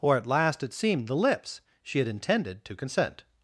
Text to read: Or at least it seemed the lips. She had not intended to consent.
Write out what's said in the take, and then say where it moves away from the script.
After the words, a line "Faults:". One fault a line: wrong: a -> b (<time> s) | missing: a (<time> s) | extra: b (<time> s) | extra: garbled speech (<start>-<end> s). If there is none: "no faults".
Or at last it seemed the lips. She had intended to consent.
Faults:
wrong: least -> last (0.3 s)
missing: not (2.1 s)